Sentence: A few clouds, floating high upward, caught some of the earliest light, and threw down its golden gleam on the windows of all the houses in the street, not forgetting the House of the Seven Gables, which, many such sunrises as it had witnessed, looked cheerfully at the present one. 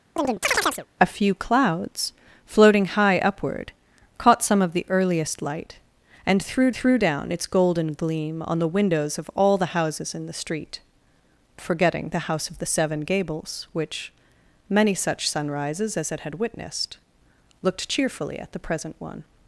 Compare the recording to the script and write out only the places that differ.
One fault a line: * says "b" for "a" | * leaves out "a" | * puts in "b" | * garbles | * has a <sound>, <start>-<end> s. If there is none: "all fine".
* has a chirp, 0.2-0.9 s
* puts in "threw"
* leaves out "not"